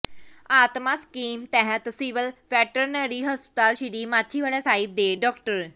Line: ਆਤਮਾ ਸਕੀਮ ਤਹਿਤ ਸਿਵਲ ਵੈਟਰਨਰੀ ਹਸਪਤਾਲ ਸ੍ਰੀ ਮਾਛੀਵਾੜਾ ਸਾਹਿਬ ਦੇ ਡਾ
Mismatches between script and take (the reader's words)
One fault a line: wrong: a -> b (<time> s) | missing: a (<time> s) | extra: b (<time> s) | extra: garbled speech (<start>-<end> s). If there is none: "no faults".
no faults